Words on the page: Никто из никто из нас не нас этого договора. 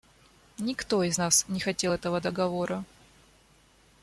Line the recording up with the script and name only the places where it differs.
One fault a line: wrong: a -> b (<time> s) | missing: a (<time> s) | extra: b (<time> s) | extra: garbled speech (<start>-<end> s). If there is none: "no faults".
missing: никто из (1.2 s)
wrong: нас -> хотел (1.6 s)